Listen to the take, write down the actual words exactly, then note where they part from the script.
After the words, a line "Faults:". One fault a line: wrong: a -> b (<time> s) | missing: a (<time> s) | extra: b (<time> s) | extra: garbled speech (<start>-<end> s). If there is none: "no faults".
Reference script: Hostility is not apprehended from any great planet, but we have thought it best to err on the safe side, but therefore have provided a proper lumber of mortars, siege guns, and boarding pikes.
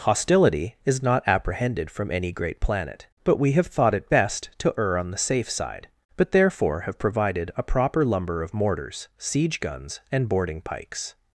Hostility is not apprehended from any great planet, but we have thought it best to err on the safe side, but therefore have provided a proper lumber of mortars, siege guns, and boarding pikes.
Faults:
no faults